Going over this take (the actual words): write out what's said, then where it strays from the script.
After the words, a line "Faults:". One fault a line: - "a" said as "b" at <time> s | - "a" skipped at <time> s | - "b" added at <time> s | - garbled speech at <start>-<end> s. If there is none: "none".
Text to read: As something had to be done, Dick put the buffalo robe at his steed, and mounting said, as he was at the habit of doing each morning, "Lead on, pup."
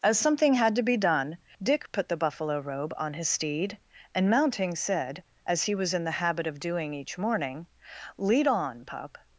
As something had to be done, Dick put the buffalo robe on his steed, and mounting said, as he was in the habit of doing each morning, "Lead on, pup."
Faults:
- "at" said as "on" at 3.0 s
- "at" said as "in" at 5.9 s